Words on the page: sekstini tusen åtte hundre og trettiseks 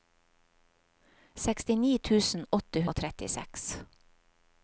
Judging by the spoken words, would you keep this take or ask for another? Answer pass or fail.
fail